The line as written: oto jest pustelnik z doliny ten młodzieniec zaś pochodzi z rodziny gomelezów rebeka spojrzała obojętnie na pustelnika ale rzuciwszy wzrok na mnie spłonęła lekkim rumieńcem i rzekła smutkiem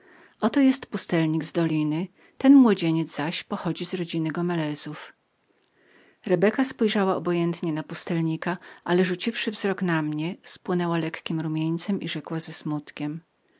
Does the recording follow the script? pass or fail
fail